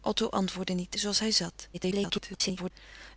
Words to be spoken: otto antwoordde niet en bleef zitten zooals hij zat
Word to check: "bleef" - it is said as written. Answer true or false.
false